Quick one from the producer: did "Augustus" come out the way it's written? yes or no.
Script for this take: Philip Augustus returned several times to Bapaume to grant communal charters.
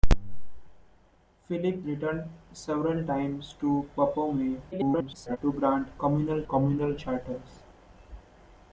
no